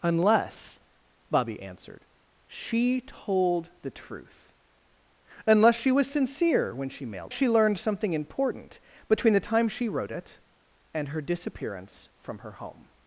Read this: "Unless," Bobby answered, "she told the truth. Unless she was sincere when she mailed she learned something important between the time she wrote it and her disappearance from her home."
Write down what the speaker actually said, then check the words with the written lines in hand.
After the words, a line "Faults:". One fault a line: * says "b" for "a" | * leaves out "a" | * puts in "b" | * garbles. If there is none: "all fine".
"Unless," Bobby answered, "she told the truth. Unless she was sincere when she mailed she learned something important between the time she wrote it and her disappearance from her home."
Faults:
all fine